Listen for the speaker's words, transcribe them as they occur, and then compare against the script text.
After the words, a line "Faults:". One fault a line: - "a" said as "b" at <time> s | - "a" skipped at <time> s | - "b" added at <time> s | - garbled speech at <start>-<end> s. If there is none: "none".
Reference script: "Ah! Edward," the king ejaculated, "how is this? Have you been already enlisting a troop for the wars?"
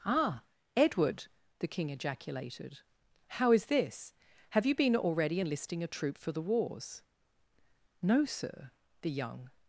"Ah! Edward," the king ejaculated, "how is this? Have you been already enlisting a troop for the wars?" "No, sir," the young
Faults:
- "No sir the young" added at 8.0 s